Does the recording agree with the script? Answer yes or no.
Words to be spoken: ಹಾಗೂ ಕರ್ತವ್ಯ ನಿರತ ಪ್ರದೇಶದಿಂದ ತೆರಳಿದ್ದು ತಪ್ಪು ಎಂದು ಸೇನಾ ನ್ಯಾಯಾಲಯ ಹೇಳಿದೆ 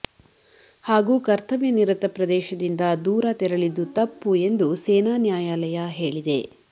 no